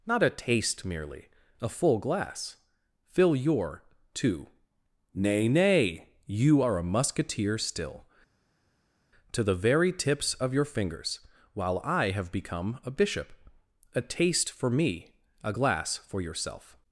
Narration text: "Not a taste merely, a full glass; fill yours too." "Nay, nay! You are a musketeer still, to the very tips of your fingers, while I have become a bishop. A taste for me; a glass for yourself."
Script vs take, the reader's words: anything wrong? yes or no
yes